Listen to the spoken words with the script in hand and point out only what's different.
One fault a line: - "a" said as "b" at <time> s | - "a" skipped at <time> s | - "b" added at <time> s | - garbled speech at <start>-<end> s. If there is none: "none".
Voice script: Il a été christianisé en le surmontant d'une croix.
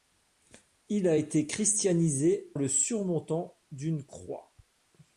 - "en" skipped at 2.6 s